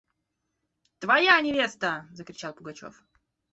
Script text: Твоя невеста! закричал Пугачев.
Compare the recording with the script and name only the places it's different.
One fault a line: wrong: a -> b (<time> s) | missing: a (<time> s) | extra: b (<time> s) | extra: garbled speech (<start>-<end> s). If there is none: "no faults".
no faults